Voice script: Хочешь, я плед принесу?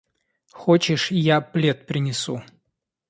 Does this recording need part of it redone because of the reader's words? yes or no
no